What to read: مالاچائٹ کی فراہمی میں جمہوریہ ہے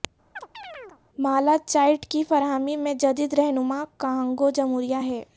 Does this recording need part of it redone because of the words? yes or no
yes